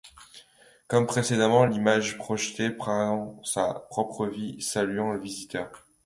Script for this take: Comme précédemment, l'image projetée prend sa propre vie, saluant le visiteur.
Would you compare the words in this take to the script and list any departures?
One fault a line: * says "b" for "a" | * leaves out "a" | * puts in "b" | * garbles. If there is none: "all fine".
all fine